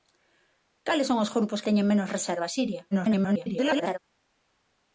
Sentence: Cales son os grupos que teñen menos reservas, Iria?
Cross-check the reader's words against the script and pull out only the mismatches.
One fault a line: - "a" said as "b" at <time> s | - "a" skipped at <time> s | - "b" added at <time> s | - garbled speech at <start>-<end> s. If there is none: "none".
- "que" skipped at 1.6 s
- garbled speech at 2.9-4.0 s